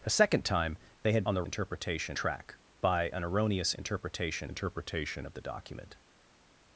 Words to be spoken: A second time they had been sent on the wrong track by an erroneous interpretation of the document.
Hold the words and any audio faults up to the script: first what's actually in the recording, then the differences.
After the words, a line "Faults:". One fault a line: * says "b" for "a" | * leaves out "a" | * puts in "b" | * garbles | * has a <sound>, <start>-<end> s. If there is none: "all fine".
A second time they had on the interpretation track by an erroneous interpretation interpretation of the document.
Faults:
* leaves out "been sent"
* says "interpretation" for "wrong"
* puts in "interpretation"